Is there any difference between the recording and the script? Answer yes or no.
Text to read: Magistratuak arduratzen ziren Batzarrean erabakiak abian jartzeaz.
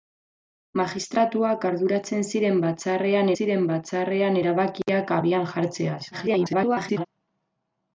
yes